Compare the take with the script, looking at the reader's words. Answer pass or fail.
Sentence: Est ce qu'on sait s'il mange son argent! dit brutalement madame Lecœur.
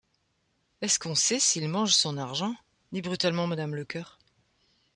pass